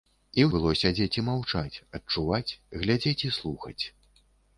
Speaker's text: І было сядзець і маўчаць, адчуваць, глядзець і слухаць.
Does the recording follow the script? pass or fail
pass